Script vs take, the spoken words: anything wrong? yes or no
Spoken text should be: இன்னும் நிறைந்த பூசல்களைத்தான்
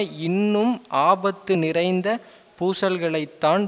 yes